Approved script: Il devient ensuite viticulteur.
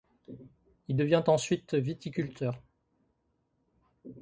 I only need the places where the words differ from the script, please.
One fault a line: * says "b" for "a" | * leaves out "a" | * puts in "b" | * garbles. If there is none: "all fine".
all fine